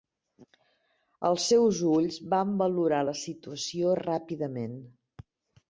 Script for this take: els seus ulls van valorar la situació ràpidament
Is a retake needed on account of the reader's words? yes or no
no